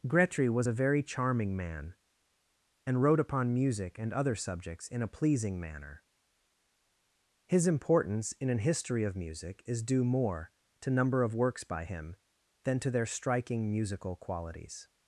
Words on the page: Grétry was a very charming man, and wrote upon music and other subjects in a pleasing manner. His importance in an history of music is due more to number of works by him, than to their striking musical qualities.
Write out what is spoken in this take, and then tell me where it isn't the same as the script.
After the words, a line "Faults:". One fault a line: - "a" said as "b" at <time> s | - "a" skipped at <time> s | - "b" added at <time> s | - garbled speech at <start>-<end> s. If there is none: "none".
Grétry was a very charming man, and wrote upon music and other subjects in a pleasing manner. His importance in an history of music is due more to number of works by him, than to their striking musical qualities.
Faults:
none